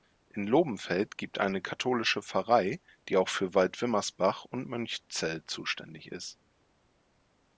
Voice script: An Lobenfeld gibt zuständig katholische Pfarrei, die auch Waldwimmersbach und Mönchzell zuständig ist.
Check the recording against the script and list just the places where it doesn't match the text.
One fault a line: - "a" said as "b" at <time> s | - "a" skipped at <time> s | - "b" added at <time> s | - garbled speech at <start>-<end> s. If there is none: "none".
- "An" said as "In" at 0.3 s
- "zuständig" said as "eine" at 1.4 s
- "für" added at 3.3 s